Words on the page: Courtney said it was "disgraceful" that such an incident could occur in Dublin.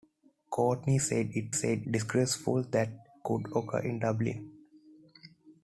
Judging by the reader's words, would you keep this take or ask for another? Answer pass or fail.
fail